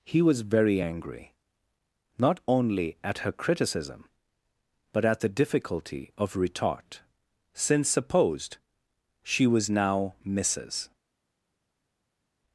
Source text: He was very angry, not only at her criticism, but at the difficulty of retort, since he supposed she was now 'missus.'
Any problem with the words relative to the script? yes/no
yes